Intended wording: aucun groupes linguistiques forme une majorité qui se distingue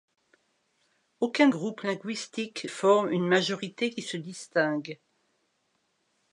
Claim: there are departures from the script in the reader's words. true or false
false